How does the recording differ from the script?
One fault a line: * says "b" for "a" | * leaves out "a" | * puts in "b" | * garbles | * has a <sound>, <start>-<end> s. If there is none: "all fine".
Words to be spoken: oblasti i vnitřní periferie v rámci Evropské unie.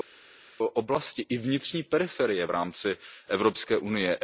all fine